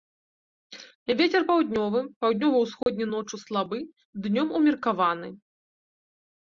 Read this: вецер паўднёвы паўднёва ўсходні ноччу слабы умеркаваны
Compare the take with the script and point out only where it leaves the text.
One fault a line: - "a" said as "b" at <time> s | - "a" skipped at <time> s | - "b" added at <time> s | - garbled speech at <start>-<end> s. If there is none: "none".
- "днём" added at 4.3 s